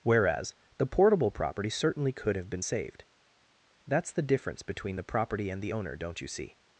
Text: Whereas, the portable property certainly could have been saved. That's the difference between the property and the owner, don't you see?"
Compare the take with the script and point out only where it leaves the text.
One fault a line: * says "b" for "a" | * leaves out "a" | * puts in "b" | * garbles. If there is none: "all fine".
all fine